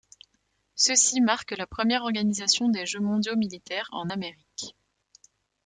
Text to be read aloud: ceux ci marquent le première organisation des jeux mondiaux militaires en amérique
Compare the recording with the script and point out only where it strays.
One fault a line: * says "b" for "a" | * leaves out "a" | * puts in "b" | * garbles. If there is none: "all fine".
* says "la" for "le"